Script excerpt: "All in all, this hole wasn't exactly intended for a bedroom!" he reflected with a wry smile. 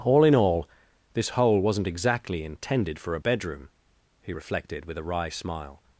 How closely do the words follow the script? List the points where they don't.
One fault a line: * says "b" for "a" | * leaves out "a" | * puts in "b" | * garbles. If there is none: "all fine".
all fine